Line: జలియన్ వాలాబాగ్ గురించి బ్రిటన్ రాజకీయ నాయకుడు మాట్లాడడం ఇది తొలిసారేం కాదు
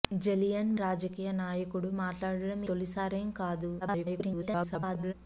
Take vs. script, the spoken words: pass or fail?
fail